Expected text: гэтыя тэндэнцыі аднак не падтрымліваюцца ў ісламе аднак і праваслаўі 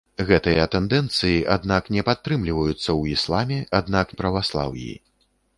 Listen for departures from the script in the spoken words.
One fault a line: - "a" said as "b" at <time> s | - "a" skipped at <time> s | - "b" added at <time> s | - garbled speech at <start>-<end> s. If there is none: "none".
none